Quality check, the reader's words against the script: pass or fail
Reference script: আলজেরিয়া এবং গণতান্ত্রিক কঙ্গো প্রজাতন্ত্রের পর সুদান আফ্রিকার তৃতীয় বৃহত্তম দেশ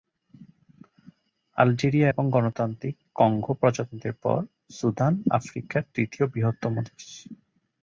pass